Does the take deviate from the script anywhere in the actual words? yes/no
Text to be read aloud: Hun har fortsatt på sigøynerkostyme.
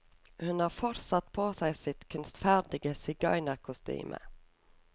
yes